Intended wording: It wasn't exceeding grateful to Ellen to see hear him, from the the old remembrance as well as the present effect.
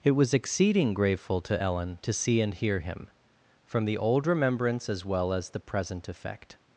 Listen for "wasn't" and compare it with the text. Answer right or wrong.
wrong